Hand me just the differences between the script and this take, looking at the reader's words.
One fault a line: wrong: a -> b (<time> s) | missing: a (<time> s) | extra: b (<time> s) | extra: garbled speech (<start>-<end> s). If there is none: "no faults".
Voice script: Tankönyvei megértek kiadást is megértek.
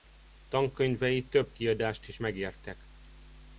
wrong: megértek -> több (1.3 s)